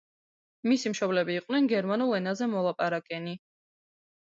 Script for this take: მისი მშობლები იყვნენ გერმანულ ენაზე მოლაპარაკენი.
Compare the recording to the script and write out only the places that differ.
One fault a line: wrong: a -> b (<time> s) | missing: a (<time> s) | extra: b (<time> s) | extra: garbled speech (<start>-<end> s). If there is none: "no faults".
no faults